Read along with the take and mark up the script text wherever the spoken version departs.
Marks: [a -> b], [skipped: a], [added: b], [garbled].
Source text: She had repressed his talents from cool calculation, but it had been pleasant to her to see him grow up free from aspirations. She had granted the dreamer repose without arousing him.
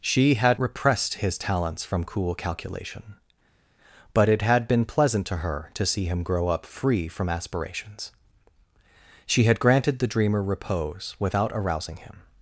She had repressed his talents from cool calculation, but it had been pleasant to her to see him grow up free from aspirations. She had granted the dreamer repose without arousing him.